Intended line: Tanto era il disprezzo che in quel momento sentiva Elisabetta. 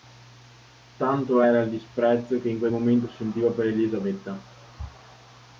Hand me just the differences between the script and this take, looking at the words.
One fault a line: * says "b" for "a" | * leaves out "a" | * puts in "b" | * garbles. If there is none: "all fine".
* puts in "per"